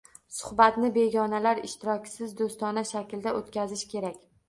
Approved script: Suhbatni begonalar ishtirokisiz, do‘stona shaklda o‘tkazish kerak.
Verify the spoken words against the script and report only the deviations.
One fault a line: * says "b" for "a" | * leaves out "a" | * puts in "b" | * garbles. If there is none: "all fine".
all fine